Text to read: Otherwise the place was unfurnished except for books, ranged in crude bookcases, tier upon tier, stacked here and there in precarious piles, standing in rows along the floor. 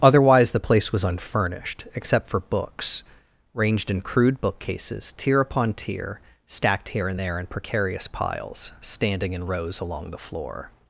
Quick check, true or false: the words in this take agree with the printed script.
true